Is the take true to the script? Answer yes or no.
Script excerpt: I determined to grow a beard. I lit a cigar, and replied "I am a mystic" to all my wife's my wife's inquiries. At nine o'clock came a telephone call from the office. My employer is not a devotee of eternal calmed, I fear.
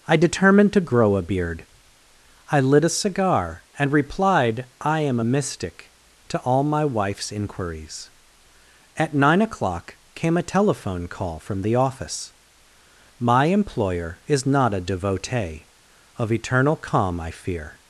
no